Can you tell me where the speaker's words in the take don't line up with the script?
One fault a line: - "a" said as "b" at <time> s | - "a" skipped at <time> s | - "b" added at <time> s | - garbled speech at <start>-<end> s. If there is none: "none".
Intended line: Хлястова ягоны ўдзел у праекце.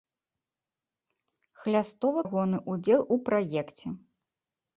none